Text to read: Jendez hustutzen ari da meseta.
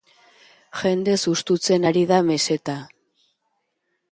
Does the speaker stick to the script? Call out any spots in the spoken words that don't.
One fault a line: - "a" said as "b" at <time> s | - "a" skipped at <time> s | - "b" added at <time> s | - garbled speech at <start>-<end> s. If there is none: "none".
none